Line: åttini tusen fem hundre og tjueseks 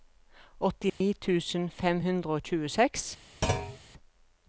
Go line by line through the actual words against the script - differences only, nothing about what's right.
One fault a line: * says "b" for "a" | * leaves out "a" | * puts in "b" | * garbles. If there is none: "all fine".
all fine